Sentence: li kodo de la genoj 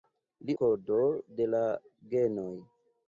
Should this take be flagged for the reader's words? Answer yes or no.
no